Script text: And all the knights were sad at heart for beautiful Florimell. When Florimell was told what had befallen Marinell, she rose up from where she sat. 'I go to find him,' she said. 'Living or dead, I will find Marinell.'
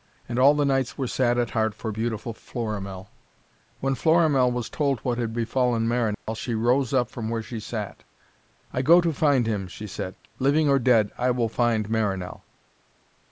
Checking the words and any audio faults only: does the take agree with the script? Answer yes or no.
no